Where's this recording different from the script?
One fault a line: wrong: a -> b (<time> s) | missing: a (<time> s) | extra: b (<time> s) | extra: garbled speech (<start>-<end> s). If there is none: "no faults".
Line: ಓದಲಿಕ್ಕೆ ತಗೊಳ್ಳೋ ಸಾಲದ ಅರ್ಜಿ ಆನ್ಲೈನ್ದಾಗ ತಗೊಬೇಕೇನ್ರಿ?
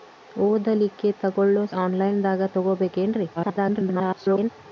missing: ಸಾಲದ ಅರ್ಜಿ (1.6 s)
extra: garbled speech (3.4-4.5 s)